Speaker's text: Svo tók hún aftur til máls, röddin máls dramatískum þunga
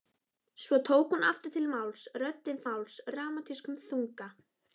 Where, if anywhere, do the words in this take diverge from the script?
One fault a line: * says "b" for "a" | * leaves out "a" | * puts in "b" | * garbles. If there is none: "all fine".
all fine